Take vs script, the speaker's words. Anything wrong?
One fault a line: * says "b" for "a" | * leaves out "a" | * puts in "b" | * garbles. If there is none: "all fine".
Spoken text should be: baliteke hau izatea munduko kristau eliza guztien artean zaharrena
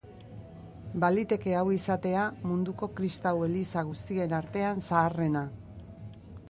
all fine